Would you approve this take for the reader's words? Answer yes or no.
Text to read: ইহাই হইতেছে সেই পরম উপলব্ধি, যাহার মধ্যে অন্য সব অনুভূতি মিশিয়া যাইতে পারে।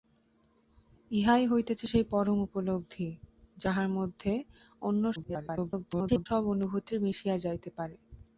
no